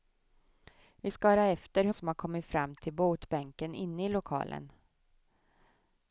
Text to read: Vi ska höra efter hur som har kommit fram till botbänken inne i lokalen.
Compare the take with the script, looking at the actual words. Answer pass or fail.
pass